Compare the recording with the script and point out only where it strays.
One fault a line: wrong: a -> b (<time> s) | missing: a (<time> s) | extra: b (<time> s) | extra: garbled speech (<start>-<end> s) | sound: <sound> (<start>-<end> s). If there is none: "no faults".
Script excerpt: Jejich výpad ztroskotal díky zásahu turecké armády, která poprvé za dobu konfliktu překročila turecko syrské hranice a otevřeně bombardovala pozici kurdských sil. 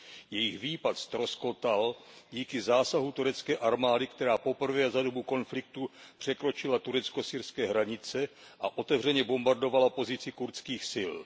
no faults